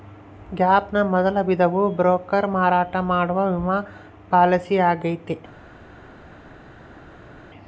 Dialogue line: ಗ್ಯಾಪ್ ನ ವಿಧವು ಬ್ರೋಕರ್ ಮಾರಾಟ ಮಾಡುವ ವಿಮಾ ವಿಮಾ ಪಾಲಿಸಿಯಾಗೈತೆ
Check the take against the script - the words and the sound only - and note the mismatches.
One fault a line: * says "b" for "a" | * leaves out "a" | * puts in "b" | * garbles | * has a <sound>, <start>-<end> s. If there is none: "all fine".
* puts in "ಮೊದಲ"
* leaves out "ವಿಮಾ"